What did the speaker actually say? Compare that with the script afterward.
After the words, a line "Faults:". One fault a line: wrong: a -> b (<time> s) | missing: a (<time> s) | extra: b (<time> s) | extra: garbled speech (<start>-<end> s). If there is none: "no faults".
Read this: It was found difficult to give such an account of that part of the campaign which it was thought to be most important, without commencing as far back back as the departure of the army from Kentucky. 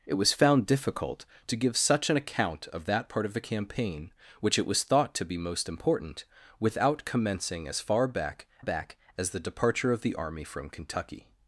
It was found difficult to give such an account of that part of the campaign which it was thought to be most important, without commencing as far back back as the departure of the army from Kentucky.
Faults:
no faults